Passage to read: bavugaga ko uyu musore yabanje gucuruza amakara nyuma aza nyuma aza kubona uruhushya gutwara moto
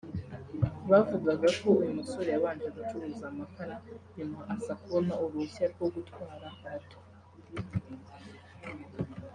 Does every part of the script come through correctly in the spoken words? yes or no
no